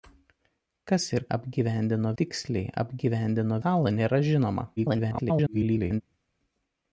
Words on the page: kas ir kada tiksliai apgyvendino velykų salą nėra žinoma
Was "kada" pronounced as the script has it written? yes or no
no